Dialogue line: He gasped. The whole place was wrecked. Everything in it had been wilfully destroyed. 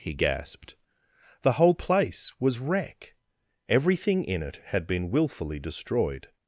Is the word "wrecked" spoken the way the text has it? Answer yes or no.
no